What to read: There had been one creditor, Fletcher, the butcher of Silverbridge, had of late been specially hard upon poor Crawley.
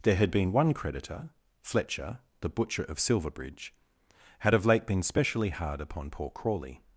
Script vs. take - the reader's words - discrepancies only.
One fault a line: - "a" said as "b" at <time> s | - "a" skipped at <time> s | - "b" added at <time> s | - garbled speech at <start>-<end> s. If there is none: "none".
none